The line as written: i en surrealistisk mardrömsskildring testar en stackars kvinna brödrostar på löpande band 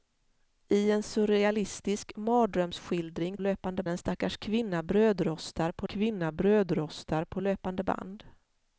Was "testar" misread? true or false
true